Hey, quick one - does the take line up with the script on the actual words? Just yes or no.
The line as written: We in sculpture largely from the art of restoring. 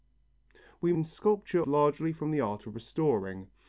yes